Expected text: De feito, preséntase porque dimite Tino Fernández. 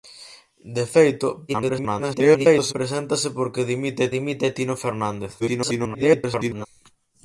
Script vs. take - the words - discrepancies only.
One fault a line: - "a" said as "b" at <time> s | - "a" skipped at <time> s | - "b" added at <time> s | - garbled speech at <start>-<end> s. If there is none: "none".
- garbled speech at 1.5-2.7 s
- "dimite" added at 4.2 s
- garbled speech at 5.4-6.7 s